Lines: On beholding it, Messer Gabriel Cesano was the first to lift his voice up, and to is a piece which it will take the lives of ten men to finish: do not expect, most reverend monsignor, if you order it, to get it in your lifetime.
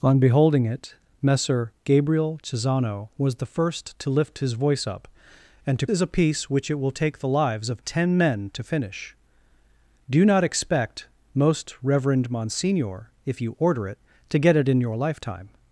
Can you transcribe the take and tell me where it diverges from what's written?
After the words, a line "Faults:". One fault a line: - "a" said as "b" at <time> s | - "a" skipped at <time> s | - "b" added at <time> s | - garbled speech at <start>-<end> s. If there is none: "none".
On beholding it, Messer Gabriel Cesano was the first to lift his voice up, and to is a piece which it will take the lives of ten men to finish: do not expect, most reverend monsignor, if you order it, to get it in your lifetime.
Faults:
none